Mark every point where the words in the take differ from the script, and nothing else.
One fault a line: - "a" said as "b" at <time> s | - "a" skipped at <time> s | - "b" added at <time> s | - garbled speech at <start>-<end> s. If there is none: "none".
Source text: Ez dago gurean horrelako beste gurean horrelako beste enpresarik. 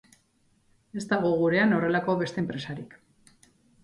- "gurean horrelako beste" skipped at 2.4 s